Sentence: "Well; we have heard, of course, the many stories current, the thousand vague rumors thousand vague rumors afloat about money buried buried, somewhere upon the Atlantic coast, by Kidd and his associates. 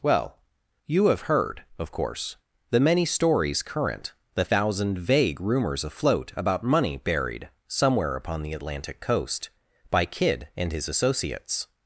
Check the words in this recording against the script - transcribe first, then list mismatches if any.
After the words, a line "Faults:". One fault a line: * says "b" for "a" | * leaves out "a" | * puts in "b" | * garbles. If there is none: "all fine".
"Well; you have heard, of course, the many stories current, the thousand vague rumors afloat about money buried, somewhere upon the Atlantic coast, by Kidd and his associates.
Faults:
* says "you" for "we"
* leaves out "thousand vague rumors"
* leaves out "buried"